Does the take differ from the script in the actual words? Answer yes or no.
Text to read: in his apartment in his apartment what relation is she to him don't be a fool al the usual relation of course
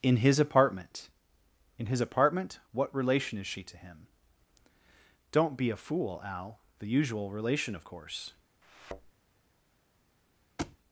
no